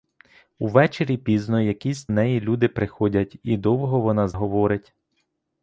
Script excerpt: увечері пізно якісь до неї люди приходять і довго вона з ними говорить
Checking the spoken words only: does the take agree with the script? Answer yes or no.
no